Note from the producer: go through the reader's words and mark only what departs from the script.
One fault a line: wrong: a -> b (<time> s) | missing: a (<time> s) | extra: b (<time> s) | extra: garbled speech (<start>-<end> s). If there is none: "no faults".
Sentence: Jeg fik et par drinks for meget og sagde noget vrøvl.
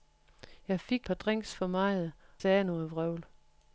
missing: et (1.1 s)
missing: og (2.1 s)